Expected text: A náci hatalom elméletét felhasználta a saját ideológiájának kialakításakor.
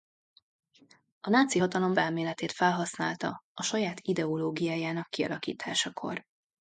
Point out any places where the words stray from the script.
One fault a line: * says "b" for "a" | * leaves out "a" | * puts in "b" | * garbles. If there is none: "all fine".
all fine